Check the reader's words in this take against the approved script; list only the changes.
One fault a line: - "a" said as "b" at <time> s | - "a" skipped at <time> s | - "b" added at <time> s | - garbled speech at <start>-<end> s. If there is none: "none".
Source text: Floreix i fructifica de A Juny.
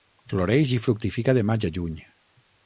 - "Maig" added at 1.5 s